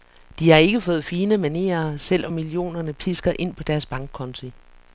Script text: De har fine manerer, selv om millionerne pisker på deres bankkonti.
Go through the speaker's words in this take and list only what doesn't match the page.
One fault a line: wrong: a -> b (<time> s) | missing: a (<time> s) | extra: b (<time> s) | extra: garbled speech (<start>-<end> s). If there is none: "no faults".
extra: ikke fået (0.6 s)
extra: ind (3.4 s)